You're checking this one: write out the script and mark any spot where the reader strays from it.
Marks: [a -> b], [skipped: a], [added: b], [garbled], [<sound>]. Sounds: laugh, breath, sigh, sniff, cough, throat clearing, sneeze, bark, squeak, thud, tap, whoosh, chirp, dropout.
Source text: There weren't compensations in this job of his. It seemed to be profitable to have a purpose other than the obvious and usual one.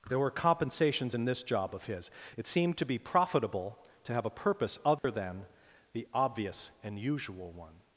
There [weren't -> were] compensations in this job of his. It seemed to be profitable to have a purpose other [dropout] than the obvious and usual one.